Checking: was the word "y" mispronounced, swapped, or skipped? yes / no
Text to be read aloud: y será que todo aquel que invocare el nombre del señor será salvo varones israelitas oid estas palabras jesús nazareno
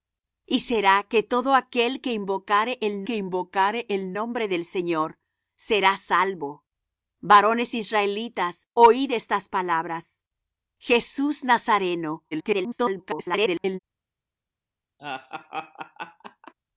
no